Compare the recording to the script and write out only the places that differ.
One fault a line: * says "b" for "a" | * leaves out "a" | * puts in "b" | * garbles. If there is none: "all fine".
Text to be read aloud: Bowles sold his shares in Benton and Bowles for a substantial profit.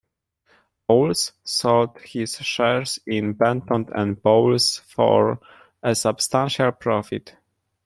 all fine